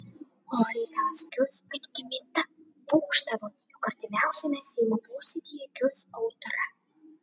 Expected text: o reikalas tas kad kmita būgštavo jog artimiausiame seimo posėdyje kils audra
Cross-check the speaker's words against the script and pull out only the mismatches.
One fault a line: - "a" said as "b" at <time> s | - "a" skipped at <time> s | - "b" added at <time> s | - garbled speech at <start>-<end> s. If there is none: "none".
- "tas" said as "kils" at 1.4 s